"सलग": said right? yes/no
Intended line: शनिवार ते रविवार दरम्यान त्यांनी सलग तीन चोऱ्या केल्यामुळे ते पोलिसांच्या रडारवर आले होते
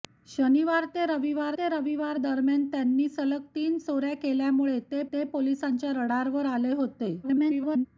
yes